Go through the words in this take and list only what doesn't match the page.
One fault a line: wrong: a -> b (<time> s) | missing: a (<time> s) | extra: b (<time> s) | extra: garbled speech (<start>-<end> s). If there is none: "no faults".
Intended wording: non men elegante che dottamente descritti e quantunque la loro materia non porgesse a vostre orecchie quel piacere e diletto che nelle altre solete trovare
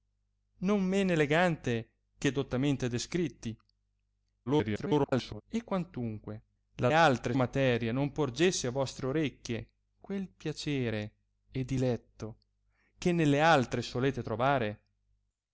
extra: garbled speech (4.5-5.4 s)
wrong: loro -> altre (6.9 s)